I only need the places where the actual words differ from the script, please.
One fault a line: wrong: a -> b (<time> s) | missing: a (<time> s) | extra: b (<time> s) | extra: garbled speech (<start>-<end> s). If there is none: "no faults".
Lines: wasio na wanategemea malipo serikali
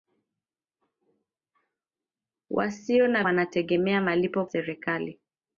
no faults